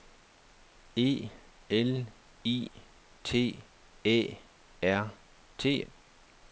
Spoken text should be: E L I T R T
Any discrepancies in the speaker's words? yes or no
yes